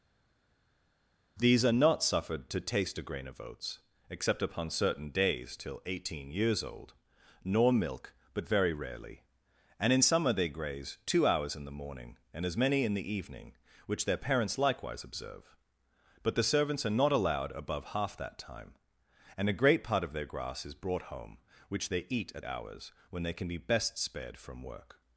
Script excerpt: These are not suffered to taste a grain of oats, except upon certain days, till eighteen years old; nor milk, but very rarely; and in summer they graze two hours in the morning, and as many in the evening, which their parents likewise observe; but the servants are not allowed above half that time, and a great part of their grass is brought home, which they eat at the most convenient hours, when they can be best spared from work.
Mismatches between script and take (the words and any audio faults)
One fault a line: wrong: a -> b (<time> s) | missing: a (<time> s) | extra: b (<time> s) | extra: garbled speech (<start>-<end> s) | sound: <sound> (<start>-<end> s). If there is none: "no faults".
missing: the most convenient (22.4 s)